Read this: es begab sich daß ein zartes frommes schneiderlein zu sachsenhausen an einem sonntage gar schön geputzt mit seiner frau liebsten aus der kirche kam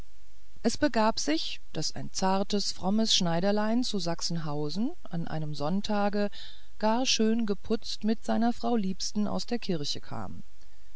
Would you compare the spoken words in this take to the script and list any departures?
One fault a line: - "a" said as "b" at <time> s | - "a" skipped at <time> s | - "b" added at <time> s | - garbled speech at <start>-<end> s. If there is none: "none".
none